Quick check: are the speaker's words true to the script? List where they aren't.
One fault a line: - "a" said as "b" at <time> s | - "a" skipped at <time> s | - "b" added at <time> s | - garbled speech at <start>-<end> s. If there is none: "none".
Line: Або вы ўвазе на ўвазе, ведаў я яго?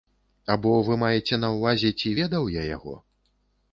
- "ўвазе" said as "маеце" at 1.0 s
- "ці" added at 2.0 s